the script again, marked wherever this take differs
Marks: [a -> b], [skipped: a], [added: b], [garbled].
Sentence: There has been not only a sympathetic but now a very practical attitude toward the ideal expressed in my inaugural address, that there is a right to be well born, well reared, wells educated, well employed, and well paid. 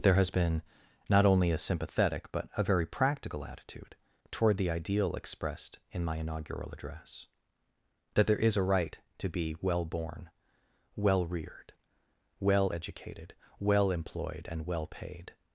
There has been not only a sympathetic but [skipped: now] a very practical attitude toward the ideal expressed in my inaugural address, that there is a right to be well born, well reared, [wells -> well] educated, well employed, and well paid.